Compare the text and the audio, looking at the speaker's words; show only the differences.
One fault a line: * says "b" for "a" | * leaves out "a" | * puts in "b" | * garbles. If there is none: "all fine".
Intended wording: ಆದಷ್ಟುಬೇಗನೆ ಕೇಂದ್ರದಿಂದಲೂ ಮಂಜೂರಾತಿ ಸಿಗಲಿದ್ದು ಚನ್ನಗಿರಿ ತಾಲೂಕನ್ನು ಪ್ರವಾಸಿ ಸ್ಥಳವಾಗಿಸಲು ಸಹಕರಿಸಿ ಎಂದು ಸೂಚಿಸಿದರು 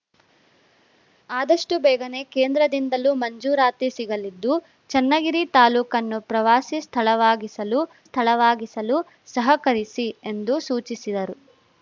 * puts in "ಸ್ಥಳವಾಗಿಸಲು"